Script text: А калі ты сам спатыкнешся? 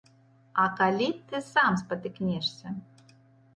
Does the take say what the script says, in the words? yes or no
yes